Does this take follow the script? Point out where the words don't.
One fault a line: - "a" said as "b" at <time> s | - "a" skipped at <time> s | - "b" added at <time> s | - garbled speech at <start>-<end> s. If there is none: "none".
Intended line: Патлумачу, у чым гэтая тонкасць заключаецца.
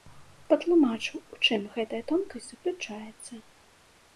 none